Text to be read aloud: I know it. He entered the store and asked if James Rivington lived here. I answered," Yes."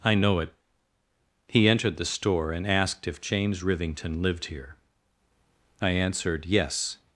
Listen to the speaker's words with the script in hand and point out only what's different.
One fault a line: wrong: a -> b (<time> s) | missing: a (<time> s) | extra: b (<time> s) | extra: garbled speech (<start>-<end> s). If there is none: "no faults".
no faults